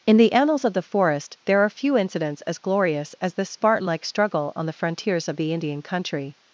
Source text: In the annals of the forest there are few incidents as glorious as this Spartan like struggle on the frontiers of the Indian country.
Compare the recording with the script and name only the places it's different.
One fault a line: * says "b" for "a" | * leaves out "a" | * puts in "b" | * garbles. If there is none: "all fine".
all fine